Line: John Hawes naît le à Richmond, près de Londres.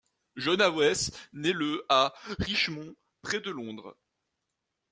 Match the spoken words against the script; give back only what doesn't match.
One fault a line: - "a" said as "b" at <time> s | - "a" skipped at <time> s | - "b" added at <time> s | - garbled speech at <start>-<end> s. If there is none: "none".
none